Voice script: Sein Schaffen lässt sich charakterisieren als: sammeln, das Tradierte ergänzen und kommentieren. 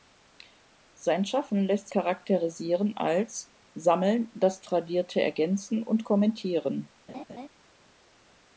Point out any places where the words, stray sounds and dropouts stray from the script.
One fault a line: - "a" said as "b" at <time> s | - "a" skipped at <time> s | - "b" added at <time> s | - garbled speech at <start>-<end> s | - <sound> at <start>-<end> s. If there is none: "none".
- "sich" skipped at 1.9 s
- laugh at 7.1-7.5 s